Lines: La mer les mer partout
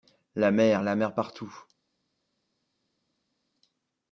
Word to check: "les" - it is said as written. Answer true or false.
false